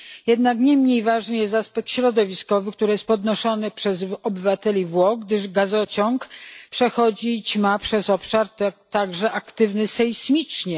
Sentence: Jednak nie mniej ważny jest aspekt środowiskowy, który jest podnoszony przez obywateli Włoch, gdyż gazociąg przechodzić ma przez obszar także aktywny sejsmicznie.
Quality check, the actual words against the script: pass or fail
pass